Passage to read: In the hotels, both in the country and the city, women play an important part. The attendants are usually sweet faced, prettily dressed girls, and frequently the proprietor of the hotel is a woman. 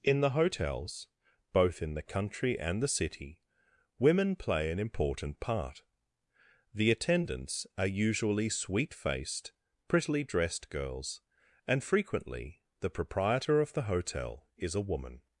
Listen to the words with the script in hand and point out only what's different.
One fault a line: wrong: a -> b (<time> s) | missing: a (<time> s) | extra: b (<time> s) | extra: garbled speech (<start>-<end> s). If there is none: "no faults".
no faults